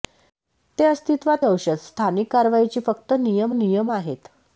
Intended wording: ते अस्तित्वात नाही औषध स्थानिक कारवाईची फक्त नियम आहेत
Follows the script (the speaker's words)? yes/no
no